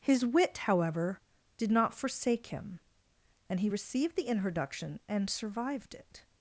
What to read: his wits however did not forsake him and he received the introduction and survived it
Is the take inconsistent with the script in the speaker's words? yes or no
yes